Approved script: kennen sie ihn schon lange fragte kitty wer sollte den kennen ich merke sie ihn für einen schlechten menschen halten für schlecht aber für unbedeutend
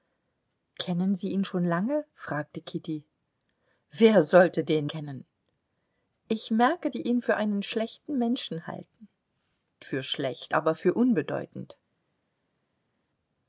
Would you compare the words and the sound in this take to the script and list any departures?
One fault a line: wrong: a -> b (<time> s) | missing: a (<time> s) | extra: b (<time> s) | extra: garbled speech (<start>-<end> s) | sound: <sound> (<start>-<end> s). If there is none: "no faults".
no faults